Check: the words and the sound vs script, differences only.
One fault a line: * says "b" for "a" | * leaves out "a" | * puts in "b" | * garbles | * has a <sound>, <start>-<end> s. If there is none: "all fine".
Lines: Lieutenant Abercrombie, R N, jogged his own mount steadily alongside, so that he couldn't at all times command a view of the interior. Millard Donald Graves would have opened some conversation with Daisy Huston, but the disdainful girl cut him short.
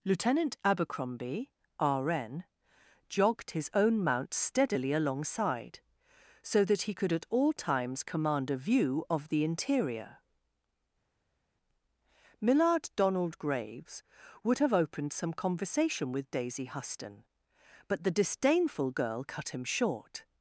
* says "could" for "couldn't"